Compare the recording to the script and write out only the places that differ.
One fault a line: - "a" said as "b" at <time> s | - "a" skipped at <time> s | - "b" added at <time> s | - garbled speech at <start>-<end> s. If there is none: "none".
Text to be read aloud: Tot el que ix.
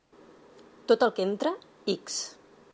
- "entra" added at 1.3 s